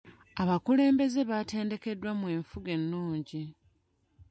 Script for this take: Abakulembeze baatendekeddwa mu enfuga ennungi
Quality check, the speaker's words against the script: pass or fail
pass